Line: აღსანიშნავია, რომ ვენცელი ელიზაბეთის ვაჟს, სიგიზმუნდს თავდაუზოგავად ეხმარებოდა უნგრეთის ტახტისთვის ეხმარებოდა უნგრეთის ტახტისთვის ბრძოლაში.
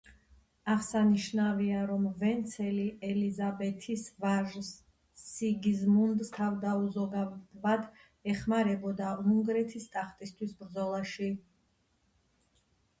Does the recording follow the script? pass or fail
fail